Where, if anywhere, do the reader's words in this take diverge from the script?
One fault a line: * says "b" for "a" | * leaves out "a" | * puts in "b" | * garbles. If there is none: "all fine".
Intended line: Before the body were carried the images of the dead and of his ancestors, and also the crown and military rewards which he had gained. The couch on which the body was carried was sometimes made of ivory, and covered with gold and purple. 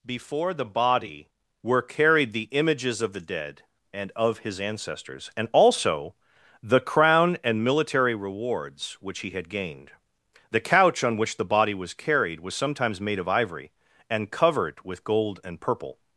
all fine